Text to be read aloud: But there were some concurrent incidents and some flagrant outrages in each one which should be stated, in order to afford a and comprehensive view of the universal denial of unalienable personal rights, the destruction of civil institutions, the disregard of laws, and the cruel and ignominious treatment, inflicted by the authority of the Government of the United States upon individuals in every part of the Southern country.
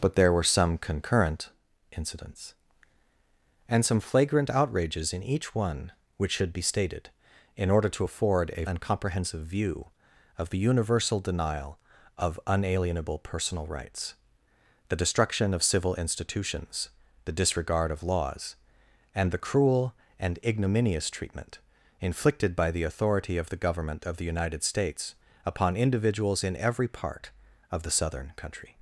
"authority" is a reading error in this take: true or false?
false